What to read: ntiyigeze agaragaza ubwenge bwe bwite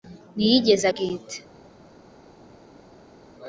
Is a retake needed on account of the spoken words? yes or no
yes